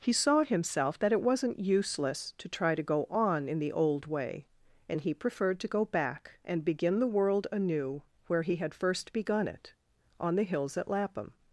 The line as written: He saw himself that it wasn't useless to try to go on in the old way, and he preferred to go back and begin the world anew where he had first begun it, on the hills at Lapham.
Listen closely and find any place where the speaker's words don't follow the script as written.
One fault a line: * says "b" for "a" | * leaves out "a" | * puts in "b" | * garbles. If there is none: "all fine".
all fine